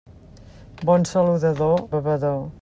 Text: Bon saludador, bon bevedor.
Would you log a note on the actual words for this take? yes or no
yes